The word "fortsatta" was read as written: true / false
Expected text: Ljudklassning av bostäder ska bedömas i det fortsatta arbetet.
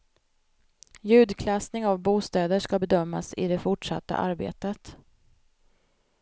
true